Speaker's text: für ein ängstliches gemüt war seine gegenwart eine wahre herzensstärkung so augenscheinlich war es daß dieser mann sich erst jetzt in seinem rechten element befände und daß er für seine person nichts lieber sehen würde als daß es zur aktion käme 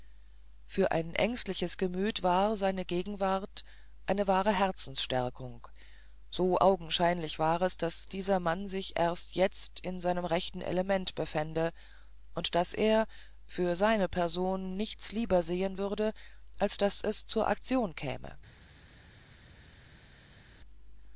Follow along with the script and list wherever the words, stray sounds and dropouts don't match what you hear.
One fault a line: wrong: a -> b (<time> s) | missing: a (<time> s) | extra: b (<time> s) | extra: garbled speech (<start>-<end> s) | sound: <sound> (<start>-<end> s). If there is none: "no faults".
no faults